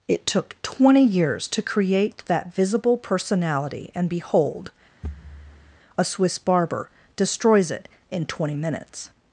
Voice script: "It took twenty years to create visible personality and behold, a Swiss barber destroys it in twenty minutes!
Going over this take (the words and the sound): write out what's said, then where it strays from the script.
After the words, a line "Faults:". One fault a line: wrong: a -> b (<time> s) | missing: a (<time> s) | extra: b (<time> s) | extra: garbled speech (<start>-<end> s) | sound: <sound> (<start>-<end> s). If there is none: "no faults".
"It took twenty years to create that visible personality and behold, a Swiss barber destroys it in twenty minutes!
Faults:
extra: that (2.2 s)
sound: thud (5.0-5.8 s)